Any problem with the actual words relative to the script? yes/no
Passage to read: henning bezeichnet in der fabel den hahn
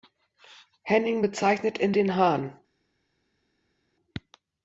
yes